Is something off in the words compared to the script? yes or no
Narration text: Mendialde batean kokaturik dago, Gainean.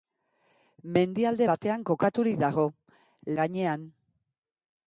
no